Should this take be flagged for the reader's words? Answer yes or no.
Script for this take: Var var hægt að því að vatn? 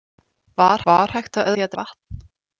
no